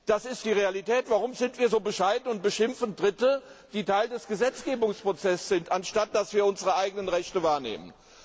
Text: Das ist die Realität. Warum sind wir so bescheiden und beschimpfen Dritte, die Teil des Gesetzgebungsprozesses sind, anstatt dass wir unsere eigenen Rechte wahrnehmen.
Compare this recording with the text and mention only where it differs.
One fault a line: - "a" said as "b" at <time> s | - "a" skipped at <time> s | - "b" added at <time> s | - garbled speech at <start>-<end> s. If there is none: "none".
none